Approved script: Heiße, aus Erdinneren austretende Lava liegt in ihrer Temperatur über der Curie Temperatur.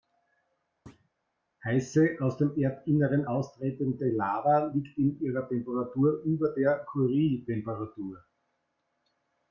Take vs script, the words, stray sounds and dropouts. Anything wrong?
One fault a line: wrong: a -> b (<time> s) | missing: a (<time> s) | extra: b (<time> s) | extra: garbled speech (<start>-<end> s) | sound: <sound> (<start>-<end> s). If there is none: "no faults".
sound: thud (0.9-1.1 s)
extra: dem (2.4 s)